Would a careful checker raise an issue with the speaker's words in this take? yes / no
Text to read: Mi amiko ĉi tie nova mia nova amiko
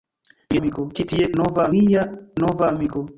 no